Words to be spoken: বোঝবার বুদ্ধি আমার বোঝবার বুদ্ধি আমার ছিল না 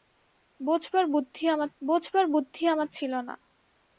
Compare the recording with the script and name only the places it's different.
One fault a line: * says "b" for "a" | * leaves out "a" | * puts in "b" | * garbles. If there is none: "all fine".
all fine